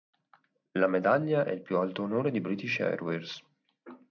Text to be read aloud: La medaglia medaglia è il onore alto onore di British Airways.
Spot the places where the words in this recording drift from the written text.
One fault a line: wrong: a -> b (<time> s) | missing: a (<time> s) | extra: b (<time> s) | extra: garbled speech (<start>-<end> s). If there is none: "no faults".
missing: medaglia (1.4 s)
wrong: onore -> più (1.6 s)